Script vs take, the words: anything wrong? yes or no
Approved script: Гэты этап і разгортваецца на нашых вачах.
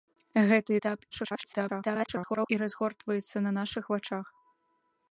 yes